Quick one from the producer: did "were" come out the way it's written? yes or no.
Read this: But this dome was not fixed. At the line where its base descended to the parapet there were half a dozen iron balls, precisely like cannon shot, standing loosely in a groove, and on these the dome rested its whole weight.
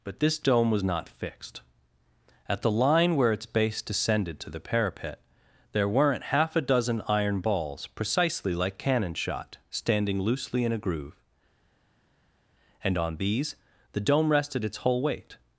no